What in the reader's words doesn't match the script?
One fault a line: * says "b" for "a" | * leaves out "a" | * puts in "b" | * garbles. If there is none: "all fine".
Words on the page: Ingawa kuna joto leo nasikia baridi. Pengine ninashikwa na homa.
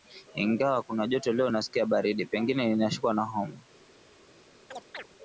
all fine